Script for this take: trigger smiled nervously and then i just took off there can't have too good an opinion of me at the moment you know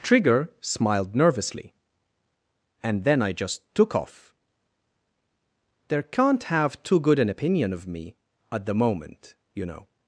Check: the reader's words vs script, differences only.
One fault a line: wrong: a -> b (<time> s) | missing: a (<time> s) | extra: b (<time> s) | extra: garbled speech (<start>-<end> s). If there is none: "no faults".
no faults